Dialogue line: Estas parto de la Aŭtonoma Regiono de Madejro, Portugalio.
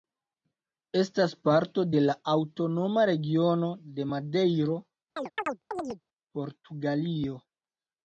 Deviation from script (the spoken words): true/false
false